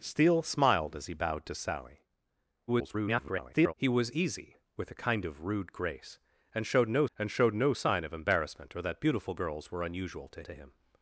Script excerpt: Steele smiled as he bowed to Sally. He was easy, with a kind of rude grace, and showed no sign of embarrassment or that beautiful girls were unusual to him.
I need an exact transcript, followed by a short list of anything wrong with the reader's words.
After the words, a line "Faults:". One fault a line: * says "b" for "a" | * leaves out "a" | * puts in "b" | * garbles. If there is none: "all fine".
Steele smiled as he bowed to Sally. [garbled] He was easy, with a kind of rude grace, and showed no and showed no sign of embarrassment or that beautiful girls were unusual to to him.
Faults:
* garbles
* puts in "and showed no"
* puts in "to"